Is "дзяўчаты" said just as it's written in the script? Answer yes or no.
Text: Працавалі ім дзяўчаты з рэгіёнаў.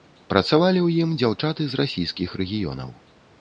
yes